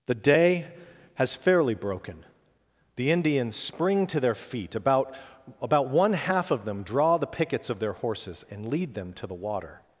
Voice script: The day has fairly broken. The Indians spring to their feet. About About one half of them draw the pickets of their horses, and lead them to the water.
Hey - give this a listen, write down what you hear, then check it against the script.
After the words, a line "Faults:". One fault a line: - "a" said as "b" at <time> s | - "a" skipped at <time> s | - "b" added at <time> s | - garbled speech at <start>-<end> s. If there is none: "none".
The day has fairly broken. The Indians spring to their feet. About About one half of them draw the pickets of their horses, and lead them to the water.
Faults:
none